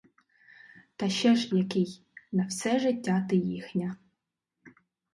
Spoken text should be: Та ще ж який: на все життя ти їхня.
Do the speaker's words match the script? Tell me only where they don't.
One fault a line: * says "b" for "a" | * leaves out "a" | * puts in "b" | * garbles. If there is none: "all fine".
all fine